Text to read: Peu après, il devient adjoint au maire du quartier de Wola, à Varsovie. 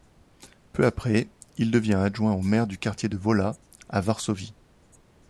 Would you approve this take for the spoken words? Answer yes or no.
yes